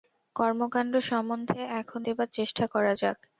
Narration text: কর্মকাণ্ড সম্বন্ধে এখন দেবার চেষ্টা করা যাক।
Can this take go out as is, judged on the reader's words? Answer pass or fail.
pass